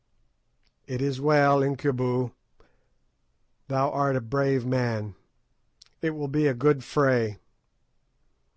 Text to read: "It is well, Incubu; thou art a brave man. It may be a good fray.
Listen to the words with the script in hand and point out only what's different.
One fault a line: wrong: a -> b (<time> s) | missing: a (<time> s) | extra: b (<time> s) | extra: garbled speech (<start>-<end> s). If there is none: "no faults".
wrong: may -> will (6.1 s)